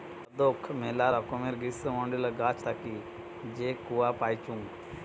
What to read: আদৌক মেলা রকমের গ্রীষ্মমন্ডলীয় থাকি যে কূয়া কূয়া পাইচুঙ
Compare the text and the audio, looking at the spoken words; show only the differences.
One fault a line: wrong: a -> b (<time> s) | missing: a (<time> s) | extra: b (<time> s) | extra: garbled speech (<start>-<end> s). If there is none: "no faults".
extra: গাছ (2.4 s)
missing: কূয়া (4.1 s)